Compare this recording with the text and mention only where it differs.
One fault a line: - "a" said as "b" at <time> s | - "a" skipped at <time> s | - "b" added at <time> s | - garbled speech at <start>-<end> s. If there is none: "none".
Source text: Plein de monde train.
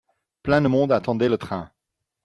- "attendait le" added at 0.9 s